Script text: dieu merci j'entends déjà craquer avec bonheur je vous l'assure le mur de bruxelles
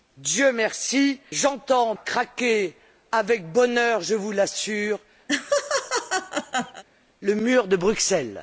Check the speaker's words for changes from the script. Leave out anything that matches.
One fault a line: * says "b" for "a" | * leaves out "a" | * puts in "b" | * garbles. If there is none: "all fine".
* leaves out "déjà"